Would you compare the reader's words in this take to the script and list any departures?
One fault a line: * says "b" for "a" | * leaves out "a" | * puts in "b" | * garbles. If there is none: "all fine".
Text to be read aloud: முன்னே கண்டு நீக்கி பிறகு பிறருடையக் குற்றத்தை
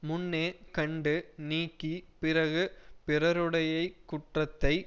all fine